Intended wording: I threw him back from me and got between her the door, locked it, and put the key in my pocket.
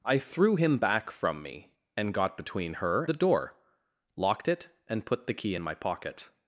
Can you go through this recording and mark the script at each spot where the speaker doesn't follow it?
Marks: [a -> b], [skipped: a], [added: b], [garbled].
I threw him back from me and got between her the door, locked it, and put the key in my pocket.